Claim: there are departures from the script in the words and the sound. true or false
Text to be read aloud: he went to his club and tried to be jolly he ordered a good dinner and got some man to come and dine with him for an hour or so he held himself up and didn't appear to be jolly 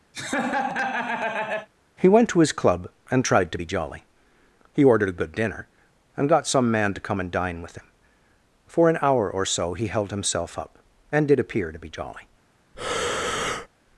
true